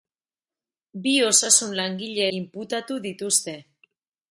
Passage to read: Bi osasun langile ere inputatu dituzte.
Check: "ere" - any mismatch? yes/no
yes